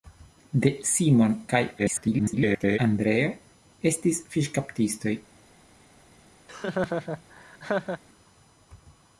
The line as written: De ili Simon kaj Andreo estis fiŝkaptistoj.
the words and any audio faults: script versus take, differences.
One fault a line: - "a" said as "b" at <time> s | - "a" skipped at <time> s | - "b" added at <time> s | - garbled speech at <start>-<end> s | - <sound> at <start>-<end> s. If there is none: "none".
- "ili" skipped at 0.7 s
- garbled speech at 1.8-2.8 s
- laugh at 6.5-8.0 s